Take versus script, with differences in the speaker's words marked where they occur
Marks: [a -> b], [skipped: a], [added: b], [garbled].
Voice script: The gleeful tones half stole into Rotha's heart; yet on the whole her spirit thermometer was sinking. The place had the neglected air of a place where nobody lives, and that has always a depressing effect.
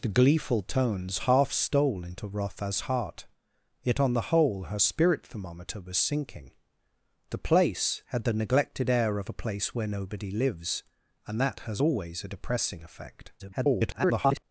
The gleeful tones half stole into Rotha's heart; yet on the whole her spirit thermometer was sinking. The place had the neglected air of a place where nobody lives, and that has always a depressing effect. [garbled]